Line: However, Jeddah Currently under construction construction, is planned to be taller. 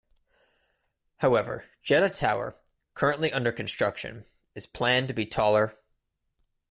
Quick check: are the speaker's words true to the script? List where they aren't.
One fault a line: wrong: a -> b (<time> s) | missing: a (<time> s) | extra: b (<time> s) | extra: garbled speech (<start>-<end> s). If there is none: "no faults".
extra: Tower (2.1 s)
missing: construction (4.2 s)